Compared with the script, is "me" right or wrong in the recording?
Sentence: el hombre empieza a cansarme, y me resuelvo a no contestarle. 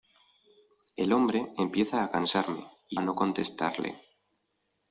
wrong